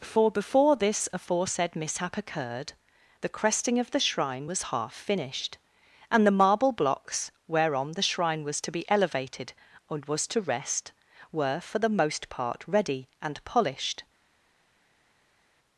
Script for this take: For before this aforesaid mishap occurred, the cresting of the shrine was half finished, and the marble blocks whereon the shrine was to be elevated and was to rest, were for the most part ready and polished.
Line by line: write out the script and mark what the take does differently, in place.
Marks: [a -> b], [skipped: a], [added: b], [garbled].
For before this aforesaid mishap occurred, the cresting of the shrine was half finished, and the marble blocks whereon the shrine was to be elevated and was to rest, were for the most part ready and polished.